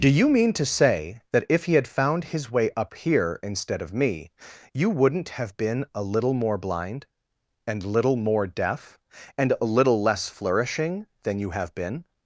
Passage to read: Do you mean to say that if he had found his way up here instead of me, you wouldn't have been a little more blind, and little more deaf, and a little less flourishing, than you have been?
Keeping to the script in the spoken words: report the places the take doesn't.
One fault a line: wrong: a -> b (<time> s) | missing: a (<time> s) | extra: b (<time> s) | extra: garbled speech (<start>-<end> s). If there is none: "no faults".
no faults